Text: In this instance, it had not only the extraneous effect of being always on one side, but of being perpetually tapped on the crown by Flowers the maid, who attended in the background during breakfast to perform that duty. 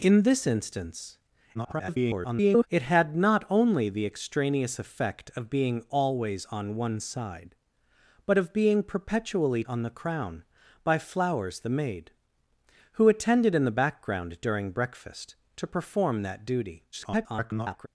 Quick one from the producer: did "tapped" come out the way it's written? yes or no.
no